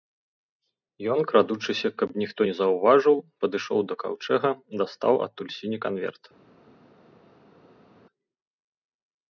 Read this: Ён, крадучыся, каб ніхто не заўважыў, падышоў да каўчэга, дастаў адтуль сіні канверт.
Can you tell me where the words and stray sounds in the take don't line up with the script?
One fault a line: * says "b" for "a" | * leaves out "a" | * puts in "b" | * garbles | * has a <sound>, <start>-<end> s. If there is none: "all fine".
all fine